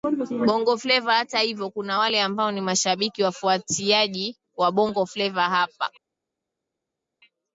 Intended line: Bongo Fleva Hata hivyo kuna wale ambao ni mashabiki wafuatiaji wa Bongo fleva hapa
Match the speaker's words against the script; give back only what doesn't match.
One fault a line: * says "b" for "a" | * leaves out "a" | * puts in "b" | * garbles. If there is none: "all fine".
all fine